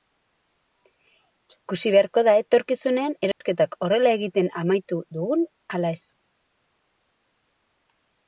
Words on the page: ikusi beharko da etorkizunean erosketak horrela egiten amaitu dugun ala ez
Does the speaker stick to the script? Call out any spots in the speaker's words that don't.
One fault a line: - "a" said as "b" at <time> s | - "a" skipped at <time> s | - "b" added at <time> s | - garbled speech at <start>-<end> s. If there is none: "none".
none